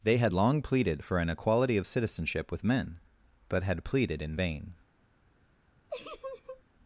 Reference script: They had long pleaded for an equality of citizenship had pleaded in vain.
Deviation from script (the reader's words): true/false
true